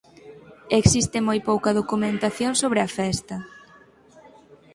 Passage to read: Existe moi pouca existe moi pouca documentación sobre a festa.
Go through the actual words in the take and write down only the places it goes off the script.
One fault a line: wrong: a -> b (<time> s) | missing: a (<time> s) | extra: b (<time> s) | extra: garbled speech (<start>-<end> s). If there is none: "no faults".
missing: existe moi pouca (1.8 s)